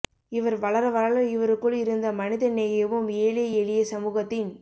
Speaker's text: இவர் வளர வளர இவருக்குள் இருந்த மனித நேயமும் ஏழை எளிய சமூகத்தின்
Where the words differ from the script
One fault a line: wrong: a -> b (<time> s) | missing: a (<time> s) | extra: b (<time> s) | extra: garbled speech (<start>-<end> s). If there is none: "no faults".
no faults